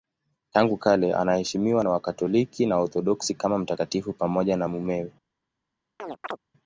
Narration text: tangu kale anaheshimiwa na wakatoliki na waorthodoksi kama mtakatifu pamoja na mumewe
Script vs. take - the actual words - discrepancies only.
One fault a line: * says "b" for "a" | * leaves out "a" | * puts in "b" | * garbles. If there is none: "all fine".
all fine